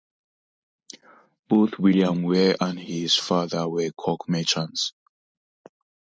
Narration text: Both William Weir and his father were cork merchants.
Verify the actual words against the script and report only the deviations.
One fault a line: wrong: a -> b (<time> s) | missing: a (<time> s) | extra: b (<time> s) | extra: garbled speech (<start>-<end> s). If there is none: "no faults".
no faults